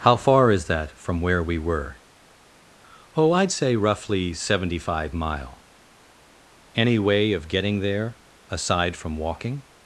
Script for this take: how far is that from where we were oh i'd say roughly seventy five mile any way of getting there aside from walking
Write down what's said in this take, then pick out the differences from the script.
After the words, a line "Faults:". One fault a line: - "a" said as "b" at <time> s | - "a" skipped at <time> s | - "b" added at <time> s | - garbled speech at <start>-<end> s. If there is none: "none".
how far is that from where we were oh i'd say roughly seventy five mile any way of getting there aside from walking
Faults:
none